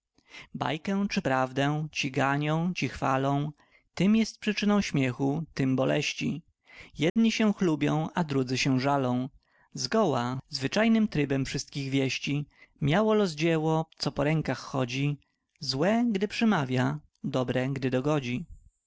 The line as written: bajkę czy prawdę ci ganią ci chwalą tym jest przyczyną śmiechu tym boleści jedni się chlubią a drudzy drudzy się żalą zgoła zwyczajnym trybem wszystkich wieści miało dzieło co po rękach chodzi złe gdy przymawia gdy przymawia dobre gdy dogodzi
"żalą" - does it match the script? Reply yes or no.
yes